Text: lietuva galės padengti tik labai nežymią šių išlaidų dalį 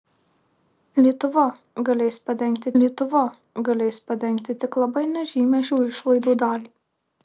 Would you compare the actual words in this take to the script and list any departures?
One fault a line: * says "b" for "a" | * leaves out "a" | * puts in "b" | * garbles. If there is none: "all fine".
* puts in "lietuva galės padengti"